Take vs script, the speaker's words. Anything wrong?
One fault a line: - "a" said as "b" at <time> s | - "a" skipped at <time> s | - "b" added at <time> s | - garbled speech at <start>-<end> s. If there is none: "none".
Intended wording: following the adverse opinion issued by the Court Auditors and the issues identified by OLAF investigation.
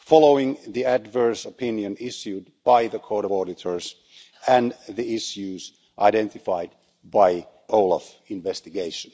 none